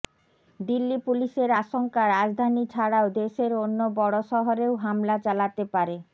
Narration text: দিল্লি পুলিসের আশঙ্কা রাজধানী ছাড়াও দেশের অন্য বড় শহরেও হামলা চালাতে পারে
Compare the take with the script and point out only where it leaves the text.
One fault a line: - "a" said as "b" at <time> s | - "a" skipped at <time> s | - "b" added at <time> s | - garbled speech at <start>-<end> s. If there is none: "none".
none